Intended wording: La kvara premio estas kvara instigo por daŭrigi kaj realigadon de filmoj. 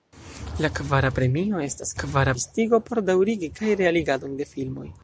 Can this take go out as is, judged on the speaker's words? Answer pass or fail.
pass